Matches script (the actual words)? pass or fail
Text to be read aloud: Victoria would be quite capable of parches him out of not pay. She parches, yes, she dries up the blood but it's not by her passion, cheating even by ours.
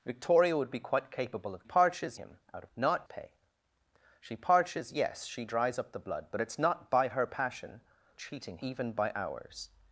pass